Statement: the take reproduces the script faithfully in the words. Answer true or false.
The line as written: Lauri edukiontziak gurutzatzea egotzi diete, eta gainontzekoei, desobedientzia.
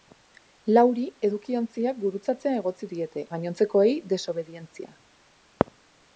false